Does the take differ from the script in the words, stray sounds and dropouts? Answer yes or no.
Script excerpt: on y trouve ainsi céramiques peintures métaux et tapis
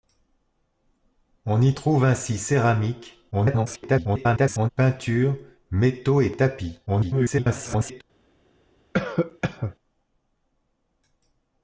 yes